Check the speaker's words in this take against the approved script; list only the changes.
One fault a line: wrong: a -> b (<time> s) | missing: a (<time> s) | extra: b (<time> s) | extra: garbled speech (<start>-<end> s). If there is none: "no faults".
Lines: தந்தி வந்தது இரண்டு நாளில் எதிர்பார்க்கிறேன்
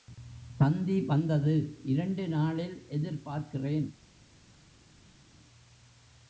no faults